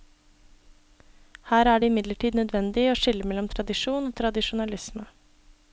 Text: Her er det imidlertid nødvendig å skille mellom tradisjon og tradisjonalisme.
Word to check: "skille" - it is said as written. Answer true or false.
true